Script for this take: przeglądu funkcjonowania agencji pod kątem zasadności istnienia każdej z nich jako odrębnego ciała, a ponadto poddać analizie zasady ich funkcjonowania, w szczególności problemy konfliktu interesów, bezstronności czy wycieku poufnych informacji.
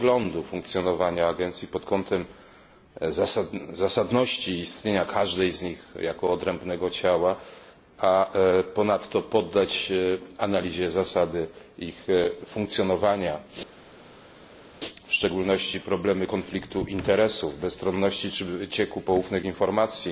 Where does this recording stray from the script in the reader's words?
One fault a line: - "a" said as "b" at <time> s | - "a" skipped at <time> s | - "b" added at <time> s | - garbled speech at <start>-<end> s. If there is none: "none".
none